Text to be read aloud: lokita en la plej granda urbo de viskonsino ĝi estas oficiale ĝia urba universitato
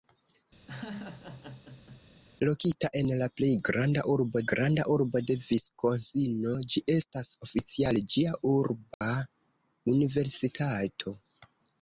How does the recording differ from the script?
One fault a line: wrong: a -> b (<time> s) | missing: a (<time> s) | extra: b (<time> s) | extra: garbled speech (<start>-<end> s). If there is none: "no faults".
extra: granda urbo (4.5 s)